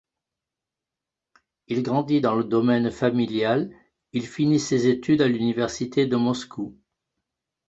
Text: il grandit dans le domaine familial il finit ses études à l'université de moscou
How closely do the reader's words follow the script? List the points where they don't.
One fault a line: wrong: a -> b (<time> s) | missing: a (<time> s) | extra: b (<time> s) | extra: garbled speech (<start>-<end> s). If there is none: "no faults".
no faults